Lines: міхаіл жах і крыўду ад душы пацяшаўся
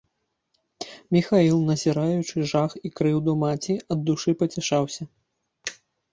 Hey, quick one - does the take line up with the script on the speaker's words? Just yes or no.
no